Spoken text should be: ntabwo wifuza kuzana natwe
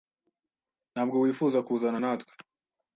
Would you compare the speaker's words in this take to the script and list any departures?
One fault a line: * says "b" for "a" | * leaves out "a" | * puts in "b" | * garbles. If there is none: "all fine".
all fine